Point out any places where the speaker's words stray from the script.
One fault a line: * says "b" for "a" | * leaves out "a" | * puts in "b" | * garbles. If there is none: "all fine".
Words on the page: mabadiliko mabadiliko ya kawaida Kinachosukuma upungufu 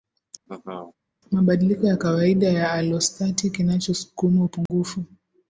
* says "ya kawaida" for "mabadiliko"
* says "alostati" for "kawaida"